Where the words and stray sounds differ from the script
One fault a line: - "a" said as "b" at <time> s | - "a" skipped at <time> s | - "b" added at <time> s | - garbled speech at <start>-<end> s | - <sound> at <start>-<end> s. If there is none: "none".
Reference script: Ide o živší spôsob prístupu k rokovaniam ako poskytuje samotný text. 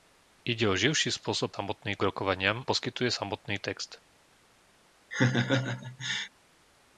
- "prístupu" said as "samotný" at 1.5 s
- "ako" skipped at 2.6 s
- laugh at 5.1-6.3 s